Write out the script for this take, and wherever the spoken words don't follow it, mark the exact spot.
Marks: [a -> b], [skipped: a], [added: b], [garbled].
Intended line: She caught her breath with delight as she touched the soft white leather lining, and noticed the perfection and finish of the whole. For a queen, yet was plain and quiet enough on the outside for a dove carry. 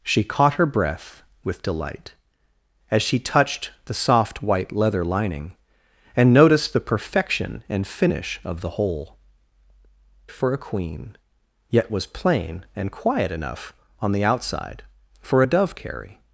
She caught her breath with delight as she touched the soft white leather lining, and noticed the perfection and finish of the whole. For a queen, yet was plain and quiet enough on the outside for a dove carry.